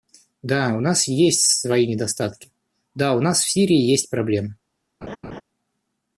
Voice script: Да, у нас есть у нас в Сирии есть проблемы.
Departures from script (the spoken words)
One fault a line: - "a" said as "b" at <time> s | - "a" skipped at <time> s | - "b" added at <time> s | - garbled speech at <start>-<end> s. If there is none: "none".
- "свои недостатки да" added at 1.6 s